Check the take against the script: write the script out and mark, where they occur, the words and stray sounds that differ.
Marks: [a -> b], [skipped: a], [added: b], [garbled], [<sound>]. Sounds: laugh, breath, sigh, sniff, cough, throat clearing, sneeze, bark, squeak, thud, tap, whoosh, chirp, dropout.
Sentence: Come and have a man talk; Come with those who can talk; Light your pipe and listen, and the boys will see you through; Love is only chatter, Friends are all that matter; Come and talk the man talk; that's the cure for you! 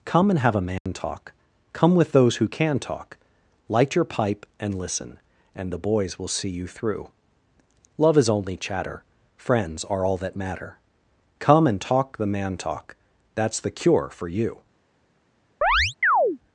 Come and have a man [dropout] talk; Come with those who can talk; Light your pipe and listen, and the boys will see you through; Love is only chatter, Friends are all that matter; Come and talk the man talk; that's the cure for you! [chirp]